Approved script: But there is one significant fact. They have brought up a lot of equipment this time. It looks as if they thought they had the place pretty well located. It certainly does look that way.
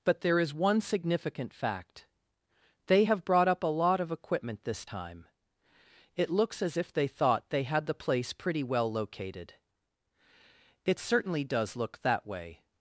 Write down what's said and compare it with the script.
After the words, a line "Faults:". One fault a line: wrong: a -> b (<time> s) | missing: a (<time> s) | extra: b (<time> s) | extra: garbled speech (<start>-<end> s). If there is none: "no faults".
But there is one significant fact. They have brought up a lot of equipment this time. It looks as if they thought they had the place pretty well located. It certainly does look that way.
Faults:
no faults